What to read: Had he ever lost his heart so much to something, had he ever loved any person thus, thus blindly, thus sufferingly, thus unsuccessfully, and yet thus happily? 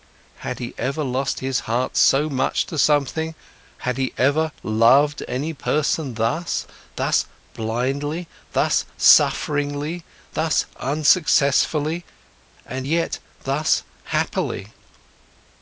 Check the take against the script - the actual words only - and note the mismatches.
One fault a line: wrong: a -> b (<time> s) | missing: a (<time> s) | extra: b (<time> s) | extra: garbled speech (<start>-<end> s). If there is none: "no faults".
no faults